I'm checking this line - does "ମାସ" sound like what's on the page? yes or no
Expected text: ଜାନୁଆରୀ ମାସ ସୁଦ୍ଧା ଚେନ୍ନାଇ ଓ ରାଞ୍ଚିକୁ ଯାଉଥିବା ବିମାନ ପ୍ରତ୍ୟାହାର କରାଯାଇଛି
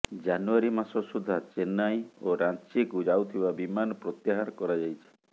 yes